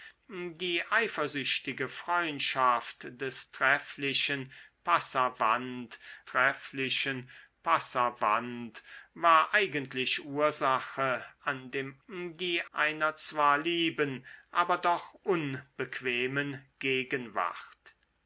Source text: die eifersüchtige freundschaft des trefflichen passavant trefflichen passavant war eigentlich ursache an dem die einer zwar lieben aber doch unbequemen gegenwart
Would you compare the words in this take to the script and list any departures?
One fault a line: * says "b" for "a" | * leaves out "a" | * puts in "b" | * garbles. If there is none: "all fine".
all fine